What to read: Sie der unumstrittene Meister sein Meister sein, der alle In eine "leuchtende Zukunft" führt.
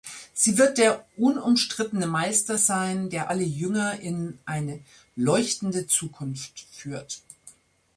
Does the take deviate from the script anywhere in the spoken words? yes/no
yes